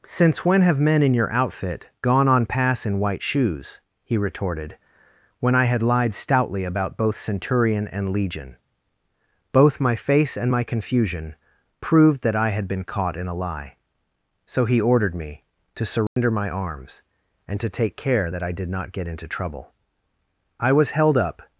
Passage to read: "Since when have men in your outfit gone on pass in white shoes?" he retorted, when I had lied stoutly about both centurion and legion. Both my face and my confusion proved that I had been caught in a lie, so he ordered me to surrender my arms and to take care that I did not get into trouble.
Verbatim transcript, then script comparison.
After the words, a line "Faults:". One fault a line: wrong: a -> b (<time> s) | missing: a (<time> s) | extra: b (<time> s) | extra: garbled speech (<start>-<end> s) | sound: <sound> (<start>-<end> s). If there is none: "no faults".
"Since when have men in your outfit gone on pass in white shoes?" he retorted, when I had lied stoutly about both centurion and legion. Both my face and my confusion proved that I had been caught in a lie, so he ordered me to surrender my arms and to take care that I did not get into trouble. I was held up
Faults:
sound: dropout (16.1-16.2 s)
extra: I was held up (20.6 s)